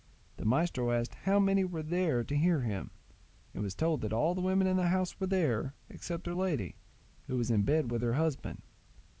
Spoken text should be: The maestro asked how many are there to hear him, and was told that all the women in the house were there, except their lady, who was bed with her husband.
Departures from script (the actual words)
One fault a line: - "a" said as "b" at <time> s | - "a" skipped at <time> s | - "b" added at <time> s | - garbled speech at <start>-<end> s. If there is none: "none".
- "are" said as "were" at 1.6 s
- "in" added at 7.5 s